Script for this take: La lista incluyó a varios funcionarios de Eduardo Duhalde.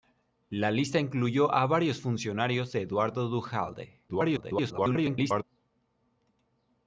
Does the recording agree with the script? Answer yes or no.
no